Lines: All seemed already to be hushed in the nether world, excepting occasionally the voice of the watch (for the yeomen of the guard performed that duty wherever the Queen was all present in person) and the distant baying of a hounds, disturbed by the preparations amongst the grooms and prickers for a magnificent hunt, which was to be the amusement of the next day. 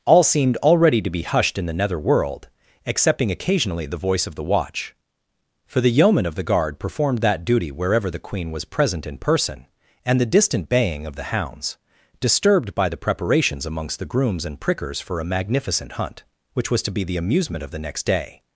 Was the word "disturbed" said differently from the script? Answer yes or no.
no